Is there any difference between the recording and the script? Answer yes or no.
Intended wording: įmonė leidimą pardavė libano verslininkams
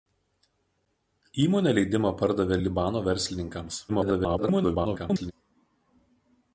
yes